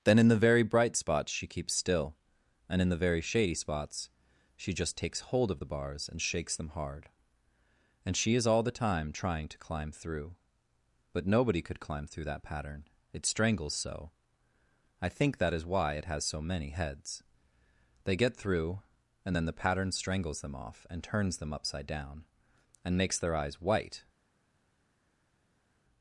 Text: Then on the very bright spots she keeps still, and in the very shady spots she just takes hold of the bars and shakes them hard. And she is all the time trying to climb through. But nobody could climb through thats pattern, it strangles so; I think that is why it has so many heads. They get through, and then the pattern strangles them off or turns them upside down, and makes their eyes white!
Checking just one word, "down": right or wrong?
right